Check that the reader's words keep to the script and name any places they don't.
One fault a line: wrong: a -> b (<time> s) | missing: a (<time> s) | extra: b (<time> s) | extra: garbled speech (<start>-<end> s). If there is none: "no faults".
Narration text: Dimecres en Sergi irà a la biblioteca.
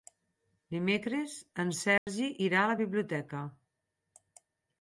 no faults